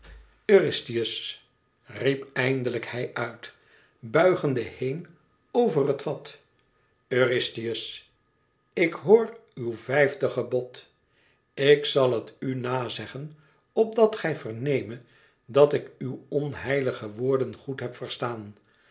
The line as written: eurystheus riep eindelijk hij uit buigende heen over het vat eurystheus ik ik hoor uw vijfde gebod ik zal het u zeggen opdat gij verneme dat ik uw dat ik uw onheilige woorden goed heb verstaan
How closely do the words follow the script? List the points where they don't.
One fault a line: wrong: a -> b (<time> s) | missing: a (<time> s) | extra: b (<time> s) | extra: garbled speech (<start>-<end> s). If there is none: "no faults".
missing: ik (8.9 s)
extra: na (12.6 s)
missing: dat ik uw (16.2 s)